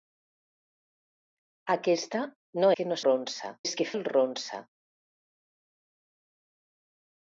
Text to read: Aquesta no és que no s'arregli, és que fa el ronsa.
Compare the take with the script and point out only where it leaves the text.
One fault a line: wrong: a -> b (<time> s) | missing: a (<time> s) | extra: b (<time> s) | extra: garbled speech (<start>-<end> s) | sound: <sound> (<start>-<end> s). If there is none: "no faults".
missing: és (2.7 s)
wrong: s'arregli -> ronsa (3.0 s)
missing: fa (3.9 s)